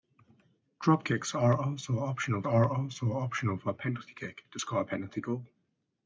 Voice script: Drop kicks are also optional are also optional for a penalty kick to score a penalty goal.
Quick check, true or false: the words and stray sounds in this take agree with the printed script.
true